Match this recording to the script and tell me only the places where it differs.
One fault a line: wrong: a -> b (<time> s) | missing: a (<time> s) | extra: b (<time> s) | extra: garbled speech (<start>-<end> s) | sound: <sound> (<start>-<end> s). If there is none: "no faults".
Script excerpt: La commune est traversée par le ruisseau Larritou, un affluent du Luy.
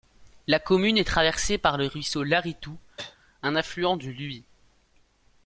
sound: cough (3.0-3.2 s)